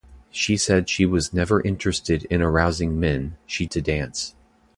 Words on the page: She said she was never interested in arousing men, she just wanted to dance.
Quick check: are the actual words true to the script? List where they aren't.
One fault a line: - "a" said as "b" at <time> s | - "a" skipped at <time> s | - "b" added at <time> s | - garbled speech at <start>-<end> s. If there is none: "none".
- "just wanted" skipped at 3.7 s